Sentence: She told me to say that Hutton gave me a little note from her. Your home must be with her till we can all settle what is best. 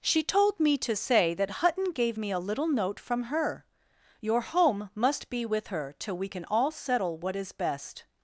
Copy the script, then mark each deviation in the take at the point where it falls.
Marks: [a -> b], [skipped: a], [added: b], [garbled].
She told me to say that Hutton gave me a little note from her. Your home must be with her till we can all settle what is best.